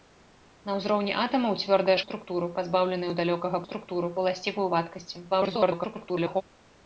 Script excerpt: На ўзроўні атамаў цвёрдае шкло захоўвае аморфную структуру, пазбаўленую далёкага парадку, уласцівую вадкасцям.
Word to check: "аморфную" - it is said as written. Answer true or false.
false